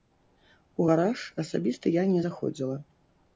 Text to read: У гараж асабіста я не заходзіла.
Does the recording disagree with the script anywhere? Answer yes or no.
no